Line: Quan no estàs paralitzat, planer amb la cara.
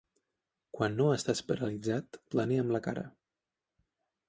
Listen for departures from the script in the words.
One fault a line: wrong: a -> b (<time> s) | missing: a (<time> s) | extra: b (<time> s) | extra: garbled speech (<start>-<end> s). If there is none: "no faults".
no faults